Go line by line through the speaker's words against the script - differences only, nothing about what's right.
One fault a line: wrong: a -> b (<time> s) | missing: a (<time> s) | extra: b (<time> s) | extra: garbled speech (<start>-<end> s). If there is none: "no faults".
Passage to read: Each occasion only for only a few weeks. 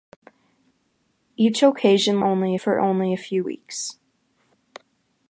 no faults